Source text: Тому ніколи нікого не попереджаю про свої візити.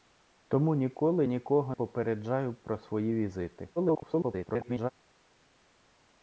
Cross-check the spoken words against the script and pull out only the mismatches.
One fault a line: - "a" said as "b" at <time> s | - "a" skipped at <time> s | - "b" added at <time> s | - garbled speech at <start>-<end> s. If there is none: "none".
- "не" skipped at 1.8 s
- garbled speech at 3.8-4.9 s